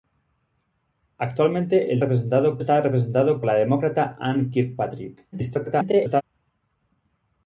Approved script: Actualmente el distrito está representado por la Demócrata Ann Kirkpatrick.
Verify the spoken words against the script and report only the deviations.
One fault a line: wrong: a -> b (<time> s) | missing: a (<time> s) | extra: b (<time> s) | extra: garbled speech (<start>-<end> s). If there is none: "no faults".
wrong: distrito -> representado (2.0 s)
missing: por (3.4 s)
extra: garbled speech (5.3-6.2 s)